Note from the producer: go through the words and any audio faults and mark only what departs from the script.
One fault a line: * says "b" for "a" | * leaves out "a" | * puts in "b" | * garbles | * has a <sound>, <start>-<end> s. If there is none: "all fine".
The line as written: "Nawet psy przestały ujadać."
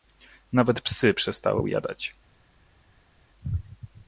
all fine